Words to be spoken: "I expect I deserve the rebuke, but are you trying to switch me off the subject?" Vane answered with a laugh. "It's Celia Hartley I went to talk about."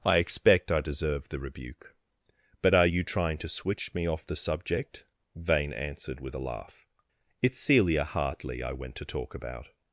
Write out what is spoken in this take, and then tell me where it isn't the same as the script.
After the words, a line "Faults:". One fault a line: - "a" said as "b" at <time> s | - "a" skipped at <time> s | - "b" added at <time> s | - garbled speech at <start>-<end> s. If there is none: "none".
"I expect I deserve the rebuke, but are you trying to switch me off the subject?" Vane answered with a laugh. "It's Celia Hartley I went to talk about."
Faults:
none